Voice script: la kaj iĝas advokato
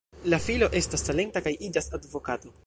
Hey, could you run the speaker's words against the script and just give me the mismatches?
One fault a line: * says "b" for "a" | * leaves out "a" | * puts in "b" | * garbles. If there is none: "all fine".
* puts in "filo estas talenta"